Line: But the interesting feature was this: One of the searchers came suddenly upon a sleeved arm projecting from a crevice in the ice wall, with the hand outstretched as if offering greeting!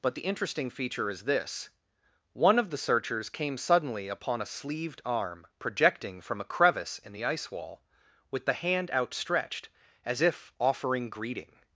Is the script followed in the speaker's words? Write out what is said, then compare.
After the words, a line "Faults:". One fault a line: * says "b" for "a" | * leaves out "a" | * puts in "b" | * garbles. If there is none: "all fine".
But the interesting feature is this: One of the searchers came suddenly upon a sleeved arm projecting from a crevice in the ice wall, with the hand outstretched as if offering greeting!
Faults:
* says "is" for "was"